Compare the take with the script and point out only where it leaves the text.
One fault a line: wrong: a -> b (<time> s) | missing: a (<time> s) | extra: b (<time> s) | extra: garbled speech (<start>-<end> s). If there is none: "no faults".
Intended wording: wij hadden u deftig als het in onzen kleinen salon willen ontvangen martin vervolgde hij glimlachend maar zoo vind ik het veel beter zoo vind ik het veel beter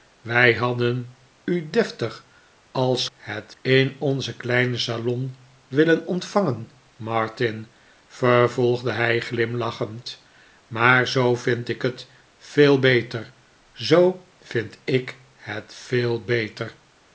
no faults